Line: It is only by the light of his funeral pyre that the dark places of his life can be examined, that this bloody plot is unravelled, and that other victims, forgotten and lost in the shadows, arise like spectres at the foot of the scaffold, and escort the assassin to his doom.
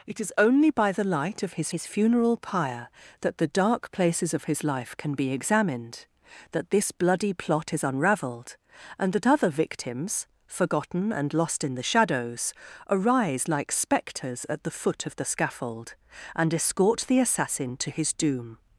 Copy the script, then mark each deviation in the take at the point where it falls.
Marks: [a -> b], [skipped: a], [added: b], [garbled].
It is only by the light of his [added: his] funeral pyre that the dark places of his life can be examined, that this bloody plot is unravelled, and that other victims, forgotten and lost in the shadows, arise like spectres at the foot of the scaffold, and escort the assassin to his doom.